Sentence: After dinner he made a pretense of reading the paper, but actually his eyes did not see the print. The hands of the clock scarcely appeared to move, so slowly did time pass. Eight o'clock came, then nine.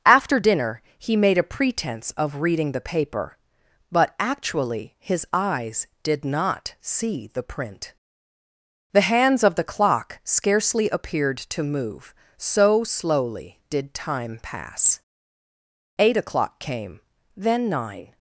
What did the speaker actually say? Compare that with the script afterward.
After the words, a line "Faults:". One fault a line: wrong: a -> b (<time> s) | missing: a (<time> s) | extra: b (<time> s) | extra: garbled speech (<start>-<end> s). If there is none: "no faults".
After dinner he made a pretense of reading the paper, but actually his eyes did not see the print. The hands of the clock scarcely appeared to move, so slowly did time pass. Eight o'clock came, then nine.
Faults:
no faults